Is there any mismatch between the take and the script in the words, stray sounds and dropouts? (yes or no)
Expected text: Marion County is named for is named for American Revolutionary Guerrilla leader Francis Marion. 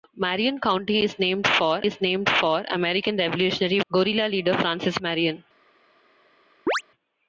yes